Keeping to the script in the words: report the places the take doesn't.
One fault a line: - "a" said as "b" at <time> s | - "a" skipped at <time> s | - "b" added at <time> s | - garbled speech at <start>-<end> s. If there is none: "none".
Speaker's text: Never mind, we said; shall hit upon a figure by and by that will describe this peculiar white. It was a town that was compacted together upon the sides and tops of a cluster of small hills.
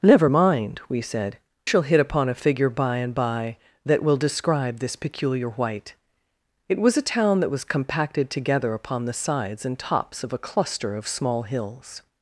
none